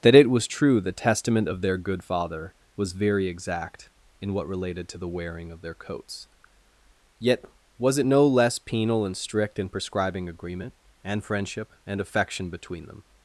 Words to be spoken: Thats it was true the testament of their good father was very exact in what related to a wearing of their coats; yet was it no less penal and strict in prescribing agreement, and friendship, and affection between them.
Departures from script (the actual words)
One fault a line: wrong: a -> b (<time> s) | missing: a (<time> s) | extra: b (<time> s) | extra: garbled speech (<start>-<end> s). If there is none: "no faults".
wrong: Thats -> That (0.0 s)
wrong: a -> the (5.0 s)